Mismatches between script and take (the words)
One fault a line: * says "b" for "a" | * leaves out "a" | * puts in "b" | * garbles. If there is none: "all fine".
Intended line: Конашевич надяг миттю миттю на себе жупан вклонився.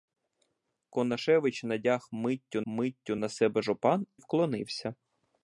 all fine